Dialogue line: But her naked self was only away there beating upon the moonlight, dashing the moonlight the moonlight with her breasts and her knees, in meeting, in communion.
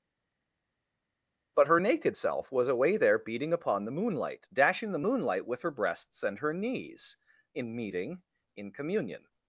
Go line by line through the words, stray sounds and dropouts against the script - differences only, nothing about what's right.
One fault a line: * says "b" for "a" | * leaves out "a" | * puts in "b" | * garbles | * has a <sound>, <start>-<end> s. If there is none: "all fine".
* leaves out "only"
* leaves out "the moonlight"